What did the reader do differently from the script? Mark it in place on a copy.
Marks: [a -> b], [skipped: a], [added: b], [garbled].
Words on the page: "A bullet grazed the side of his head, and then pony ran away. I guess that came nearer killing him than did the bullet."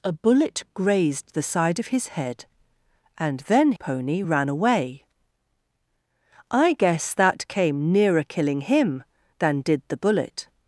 "A bullet grazed the side of his head, and then pony ran away. I guess that came nearer killing him than did the bullet."